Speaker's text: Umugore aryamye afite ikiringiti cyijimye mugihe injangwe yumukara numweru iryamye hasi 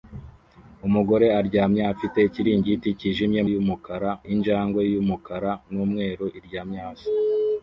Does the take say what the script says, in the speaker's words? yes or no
no